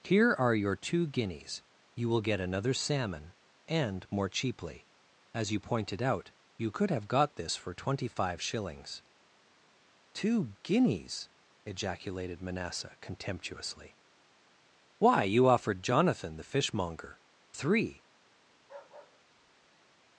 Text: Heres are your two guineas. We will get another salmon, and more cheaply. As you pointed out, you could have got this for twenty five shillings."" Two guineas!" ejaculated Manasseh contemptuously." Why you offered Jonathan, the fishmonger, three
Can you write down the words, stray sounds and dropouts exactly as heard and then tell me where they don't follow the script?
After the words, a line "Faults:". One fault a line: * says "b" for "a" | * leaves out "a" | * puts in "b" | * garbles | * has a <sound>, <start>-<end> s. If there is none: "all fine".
Here are your two guineas. You will get another salmon, and more cheaply. As you pointed out, you could have got this for twenty five shillings."" Two guineas!" ejaculated Manasseh contemptuously." Why you offered Jonathan, the fishmonger, three
Faults:
* says "Here" for "Heres"
* says "You" for "We"
* has a bark, 18.5-20.0 s